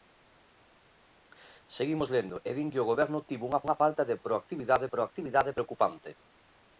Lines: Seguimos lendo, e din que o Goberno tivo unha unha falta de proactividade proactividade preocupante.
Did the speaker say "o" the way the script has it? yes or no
yes